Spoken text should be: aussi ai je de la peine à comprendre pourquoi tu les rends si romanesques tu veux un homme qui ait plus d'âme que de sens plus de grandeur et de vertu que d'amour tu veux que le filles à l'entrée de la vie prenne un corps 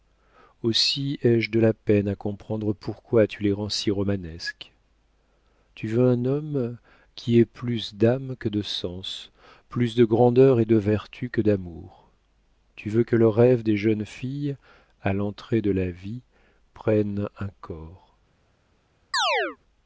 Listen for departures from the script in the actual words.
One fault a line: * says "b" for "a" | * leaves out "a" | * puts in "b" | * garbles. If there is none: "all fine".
* puts in "rêve des jeunes"